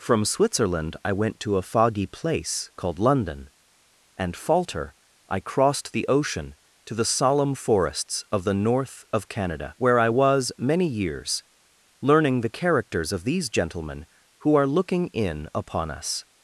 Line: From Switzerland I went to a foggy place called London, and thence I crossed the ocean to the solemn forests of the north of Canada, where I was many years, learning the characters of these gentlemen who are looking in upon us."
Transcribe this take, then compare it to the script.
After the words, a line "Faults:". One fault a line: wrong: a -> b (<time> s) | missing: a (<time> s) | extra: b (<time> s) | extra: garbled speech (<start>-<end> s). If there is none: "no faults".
From Switzerland I went to a foggy place called London, and falter I crossed the ocean to the solemn forests of the north of Canada, where I was many years, learning the characters of these gentlemen who are looking in upon us."
Faults:
wrong: thence -> falter (4.3 s)